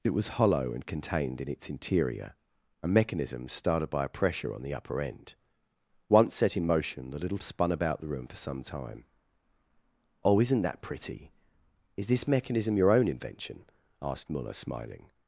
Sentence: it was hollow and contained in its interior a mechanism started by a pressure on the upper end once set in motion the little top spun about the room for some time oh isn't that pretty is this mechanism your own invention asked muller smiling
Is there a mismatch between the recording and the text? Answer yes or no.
yes